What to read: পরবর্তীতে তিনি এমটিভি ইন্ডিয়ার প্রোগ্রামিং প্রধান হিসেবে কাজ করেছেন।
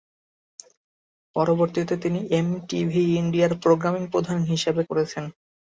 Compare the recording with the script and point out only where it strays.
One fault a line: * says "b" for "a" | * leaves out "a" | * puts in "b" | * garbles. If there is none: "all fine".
* leaves out "কাজ"